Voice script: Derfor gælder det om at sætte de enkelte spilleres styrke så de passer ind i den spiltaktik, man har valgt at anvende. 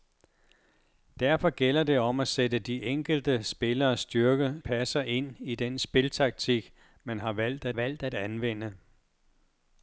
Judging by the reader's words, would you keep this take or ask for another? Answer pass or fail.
fail